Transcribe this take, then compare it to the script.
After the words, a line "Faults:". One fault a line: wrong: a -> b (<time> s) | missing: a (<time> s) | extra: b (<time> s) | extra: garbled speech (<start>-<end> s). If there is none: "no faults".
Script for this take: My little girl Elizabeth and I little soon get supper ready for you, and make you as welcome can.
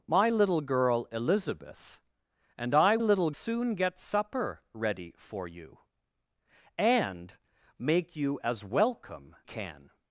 My little girl Elizabeth and I little soon get supper ready for you, and make you as welcome can.
Faults:
no faults